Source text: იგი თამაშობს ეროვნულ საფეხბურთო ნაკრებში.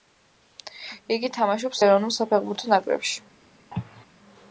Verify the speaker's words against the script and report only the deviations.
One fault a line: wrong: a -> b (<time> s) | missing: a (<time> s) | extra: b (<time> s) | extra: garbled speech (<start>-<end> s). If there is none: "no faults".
no faults